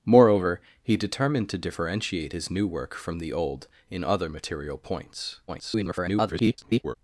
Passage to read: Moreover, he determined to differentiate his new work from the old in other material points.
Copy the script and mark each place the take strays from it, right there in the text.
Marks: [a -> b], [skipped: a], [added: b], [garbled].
Moreover, he determined to differentiate his new work from the old in other material points. [garbled]